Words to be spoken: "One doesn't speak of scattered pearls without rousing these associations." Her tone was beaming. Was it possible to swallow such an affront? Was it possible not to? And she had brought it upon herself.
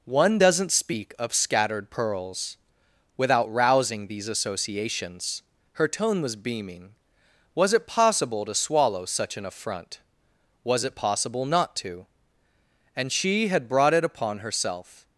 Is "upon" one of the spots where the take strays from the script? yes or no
no